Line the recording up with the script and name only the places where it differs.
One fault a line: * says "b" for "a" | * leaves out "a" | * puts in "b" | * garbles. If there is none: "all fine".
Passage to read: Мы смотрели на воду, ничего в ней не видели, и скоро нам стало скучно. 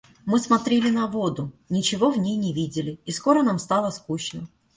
all fine